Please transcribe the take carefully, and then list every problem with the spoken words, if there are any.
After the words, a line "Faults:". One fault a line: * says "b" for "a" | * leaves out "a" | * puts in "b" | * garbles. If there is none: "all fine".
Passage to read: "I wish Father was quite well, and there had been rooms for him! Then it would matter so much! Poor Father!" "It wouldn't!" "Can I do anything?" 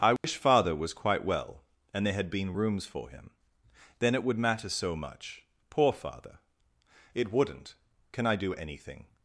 "I wish Father was quite well, and there had been rooms for him! Then it would matter so much! Poor Father!" "It wouldn't!" "Can I do anything?"
Faults:
all fine